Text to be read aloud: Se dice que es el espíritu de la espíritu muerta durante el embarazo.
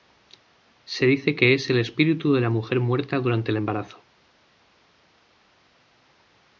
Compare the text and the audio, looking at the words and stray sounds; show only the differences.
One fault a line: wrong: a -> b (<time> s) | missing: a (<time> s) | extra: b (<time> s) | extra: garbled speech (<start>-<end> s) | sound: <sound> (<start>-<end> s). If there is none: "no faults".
wrong: espíritu -> mujer (2.5 s)